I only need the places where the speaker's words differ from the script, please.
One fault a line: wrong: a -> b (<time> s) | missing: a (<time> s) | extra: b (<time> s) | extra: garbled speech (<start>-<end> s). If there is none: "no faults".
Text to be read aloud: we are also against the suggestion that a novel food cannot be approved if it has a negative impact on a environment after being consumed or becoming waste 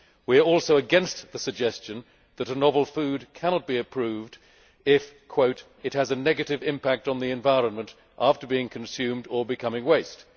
wrong: a -> the (7.2 s)